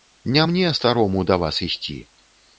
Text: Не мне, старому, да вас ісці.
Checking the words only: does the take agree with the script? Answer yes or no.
yes